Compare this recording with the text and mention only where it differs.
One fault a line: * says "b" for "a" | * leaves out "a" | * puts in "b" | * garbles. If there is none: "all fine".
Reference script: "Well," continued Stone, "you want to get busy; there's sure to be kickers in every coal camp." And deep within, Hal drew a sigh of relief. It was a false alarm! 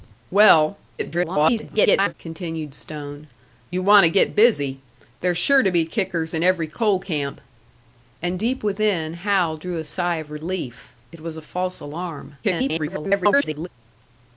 * garbles
* garbles